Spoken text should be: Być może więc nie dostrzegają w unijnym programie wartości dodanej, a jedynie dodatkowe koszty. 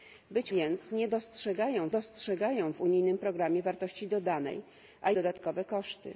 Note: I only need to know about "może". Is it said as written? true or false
false